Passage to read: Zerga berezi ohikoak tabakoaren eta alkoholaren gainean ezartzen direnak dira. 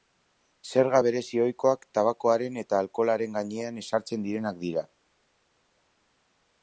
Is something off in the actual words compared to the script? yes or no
no